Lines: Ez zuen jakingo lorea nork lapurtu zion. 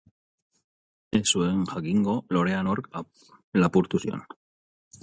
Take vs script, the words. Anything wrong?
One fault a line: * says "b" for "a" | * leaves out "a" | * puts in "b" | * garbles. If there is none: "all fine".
all fine